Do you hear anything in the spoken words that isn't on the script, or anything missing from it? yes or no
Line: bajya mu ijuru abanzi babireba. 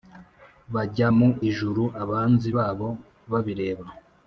yes